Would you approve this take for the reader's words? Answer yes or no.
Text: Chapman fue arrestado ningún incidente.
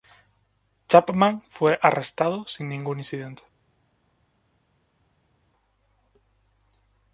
no